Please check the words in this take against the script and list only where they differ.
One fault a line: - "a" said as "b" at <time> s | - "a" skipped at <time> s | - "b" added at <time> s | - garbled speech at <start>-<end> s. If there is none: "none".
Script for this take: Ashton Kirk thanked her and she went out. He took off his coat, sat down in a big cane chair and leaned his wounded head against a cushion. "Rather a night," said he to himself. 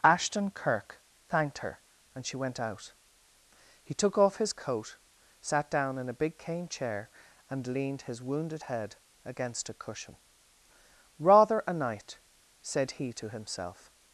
none